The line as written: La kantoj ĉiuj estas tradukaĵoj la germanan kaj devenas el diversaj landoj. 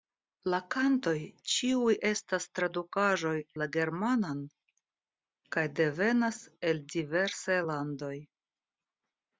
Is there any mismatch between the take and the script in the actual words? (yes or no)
no